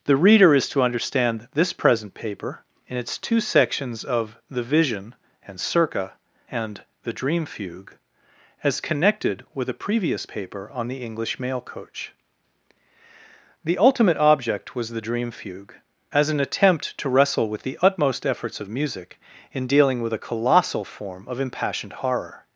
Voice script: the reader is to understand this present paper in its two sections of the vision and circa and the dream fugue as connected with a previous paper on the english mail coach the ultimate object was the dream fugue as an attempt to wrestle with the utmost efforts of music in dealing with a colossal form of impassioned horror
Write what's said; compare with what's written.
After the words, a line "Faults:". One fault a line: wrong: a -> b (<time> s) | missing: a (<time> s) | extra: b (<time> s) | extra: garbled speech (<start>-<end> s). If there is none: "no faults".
the reader is to understand this present paper in its two sections of the vision and circa and the dream fugue as connected with a previous paper on the english mail coach the ultimate object was the dream fugue as an attempt to wrestle with the utmost efforts of music in dealing with a colossal form of impassioned horror
Faults:
no faults